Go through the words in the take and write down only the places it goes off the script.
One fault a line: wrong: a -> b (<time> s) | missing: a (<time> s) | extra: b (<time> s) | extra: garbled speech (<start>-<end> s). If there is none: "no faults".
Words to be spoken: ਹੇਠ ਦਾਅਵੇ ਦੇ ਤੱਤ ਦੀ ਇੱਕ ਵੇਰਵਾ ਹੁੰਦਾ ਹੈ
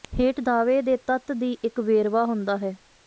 no faults